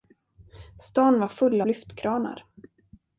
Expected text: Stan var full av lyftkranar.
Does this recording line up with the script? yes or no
no